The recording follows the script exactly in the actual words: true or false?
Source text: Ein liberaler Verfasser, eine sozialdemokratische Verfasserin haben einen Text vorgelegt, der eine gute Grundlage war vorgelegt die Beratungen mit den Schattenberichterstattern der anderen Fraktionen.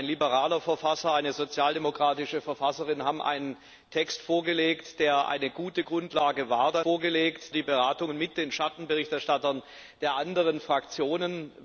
true